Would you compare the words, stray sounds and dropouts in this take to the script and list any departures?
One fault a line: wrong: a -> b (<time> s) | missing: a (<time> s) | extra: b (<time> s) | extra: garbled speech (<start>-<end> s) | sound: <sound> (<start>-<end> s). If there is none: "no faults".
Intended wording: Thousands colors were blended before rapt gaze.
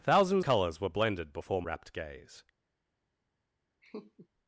sound: laugh (3.8-4.3 s)